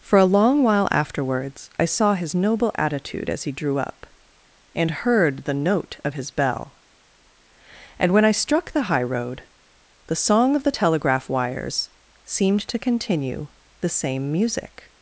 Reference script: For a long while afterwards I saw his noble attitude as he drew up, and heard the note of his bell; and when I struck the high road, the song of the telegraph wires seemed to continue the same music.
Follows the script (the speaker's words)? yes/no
yes